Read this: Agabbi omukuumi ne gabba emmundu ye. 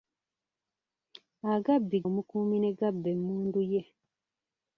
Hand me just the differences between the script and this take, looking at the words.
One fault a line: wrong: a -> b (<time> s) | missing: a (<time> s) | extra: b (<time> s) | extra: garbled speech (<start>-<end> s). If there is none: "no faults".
no faults